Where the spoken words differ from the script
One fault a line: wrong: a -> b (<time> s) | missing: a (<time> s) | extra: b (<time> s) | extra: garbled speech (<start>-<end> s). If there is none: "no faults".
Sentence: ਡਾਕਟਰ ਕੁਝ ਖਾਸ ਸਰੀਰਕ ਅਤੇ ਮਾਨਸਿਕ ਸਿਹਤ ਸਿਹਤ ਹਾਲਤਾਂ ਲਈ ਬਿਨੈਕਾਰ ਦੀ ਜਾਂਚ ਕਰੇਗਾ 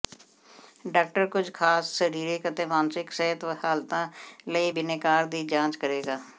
missing: ਸਿਹਤ (3.4 s)